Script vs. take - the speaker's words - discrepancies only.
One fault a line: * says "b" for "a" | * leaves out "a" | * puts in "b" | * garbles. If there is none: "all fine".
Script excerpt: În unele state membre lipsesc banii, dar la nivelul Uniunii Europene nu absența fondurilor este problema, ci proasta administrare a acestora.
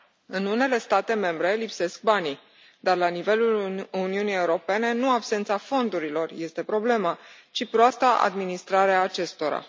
all fine